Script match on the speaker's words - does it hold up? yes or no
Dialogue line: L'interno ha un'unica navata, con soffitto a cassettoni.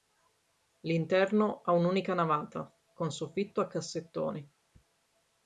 yes